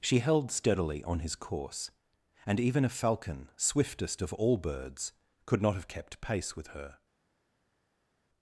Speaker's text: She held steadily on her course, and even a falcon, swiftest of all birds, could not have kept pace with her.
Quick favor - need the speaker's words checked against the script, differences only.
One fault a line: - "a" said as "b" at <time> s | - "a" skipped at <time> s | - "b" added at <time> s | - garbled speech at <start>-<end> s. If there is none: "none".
- "her" said as "his" at 1.2 s